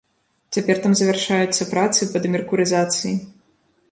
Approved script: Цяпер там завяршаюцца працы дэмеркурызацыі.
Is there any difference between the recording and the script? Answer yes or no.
yes